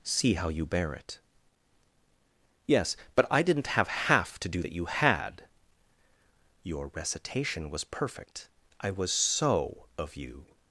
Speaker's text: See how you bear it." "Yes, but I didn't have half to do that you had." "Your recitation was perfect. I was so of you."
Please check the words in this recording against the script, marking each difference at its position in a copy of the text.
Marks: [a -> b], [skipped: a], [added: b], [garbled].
See how you bear it." "Yes, but I didn't have half to do that you had." "Your recitation was perfect. I was so of you."